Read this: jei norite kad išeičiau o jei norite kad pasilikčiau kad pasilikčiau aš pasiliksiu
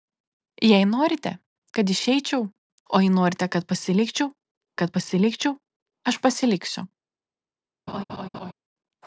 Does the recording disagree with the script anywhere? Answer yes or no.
no